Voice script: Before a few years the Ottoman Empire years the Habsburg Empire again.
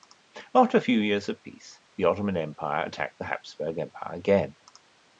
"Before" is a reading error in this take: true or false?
true